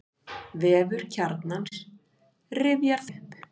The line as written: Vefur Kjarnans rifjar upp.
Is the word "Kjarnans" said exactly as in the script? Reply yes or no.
yes